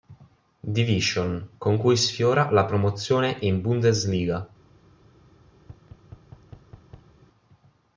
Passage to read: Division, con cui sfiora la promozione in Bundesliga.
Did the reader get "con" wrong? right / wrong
right